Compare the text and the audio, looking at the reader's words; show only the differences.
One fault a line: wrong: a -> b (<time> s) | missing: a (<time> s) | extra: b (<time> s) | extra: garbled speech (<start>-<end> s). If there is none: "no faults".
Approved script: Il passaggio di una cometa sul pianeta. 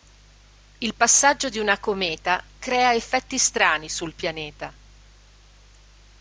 extra: crea effetti strani (2.6 s)